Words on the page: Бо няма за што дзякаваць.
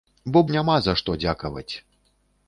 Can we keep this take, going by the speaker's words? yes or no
yes